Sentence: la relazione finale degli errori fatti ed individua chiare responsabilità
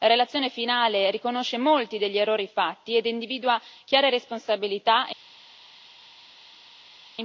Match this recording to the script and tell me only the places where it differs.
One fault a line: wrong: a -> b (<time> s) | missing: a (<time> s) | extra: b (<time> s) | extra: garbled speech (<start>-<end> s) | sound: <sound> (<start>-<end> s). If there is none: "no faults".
extra: riconosce molti (1.1 s)